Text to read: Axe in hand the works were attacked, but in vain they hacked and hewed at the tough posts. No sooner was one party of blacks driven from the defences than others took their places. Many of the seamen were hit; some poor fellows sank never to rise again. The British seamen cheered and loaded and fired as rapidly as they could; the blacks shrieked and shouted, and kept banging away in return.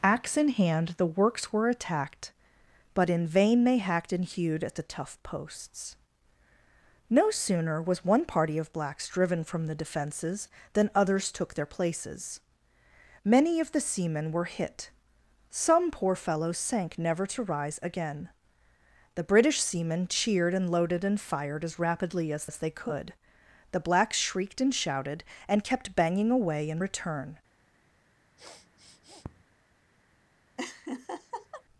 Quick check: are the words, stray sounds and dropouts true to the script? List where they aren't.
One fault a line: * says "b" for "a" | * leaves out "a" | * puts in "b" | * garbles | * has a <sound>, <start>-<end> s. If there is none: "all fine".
* puts in "as"
* has a sniff, 28.4-29.4 s
* has a laugh, 30.6-31.6 s